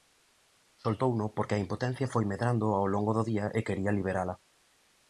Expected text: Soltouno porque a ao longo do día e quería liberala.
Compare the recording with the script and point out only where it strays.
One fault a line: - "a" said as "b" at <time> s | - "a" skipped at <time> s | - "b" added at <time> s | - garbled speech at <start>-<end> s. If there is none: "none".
- "impotencia foi medrando" added at 1.6 s